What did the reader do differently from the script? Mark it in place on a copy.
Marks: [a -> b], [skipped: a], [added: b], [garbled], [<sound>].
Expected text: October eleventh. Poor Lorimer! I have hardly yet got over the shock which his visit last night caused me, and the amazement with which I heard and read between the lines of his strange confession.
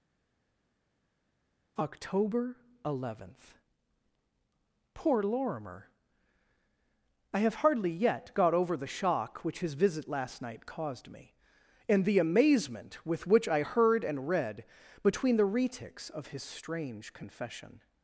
October eleventh. Poor Lorimer! I have hardly yet got over the shock which his visit last night caused me, and the amazement with which I heard and read between the [lines -> retics] of his strange confession.